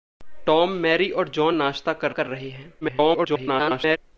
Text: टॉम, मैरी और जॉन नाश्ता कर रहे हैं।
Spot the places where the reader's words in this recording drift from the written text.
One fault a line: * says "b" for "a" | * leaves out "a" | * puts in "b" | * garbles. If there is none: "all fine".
* puts in "कर"
* garbles